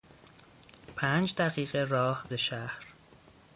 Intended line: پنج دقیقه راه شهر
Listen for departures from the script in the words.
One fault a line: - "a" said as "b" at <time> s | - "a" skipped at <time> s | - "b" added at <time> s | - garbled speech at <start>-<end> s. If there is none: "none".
none